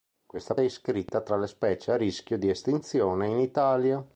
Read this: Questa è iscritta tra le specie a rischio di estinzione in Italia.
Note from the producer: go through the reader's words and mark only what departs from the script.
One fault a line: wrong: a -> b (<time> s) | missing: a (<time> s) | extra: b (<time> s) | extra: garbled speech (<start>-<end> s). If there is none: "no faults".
no faults